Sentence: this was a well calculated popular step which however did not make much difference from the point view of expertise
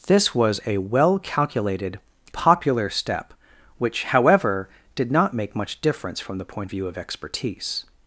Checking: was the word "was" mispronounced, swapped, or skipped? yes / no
no